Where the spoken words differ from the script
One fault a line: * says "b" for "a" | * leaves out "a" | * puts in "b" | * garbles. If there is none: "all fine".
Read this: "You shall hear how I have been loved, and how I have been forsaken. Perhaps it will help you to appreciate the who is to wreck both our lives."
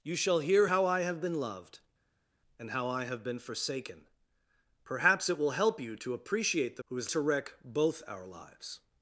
all fine